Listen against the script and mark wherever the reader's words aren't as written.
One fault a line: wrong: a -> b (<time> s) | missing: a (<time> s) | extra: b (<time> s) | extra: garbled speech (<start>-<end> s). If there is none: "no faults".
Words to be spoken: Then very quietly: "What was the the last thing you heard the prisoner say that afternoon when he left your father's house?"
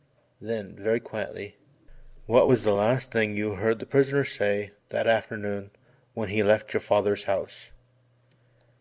missing: the (2.7 s)